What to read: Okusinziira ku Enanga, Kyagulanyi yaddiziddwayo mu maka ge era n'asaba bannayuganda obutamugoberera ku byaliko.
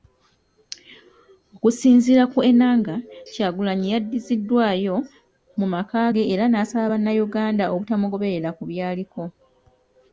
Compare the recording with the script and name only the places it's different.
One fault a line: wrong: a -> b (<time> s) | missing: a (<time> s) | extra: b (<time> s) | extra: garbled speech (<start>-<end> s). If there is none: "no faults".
no faults